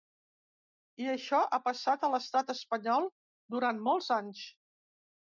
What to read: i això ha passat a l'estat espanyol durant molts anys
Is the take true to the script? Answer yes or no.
yes